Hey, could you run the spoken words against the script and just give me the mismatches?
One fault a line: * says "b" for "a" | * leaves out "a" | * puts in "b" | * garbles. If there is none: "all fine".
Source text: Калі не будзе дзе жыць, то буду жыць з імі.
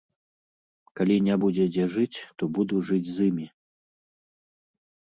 all fine